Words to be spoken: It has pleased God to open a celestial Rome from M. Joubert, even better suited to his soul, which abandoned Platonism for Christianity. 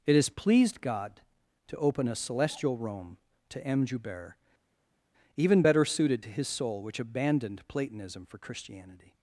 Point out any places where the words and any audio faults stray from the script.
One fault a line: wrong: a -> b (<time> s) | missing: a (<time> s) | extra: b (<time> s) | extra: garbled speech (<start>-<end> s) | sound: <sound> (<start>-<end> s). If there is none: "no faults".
wrong: from -> to (3.5 s)